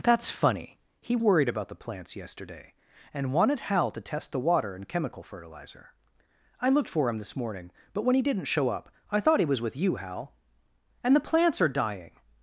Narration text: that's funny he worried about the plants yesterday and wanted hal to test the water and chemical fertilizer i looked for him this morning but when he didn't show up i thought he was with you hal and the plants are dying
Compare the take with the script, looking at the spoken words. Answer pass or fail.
pass